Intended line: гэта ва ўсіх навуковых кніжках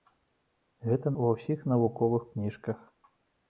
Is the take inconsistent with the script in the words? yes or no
no